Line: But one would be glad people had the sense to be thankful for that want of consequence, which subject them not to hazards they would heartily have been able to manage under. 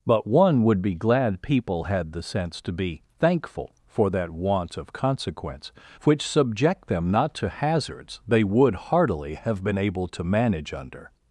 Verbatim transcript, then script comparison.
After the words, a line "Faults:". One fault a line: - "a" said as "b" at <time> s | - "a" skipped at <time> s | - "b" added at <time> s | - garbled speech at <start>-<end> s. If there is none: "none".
But one would be glad people had the sense to be thankful for that want of consequence, which subject them not to hazards they would heartily have been able to manage under.
Faults:
none